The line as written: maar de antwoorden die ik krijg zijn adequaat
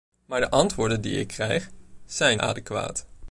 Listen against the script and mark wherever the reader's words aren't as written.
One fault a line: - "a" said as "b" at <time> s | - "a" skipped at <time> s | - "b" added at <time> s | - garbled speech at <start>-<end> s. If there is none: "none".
none